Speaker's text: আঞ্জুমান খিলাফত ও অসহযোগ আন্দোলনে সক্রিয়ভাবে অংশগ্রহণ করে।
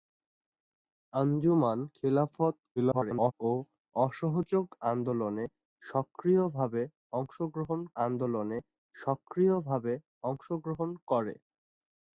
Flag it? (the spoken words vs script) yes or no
yes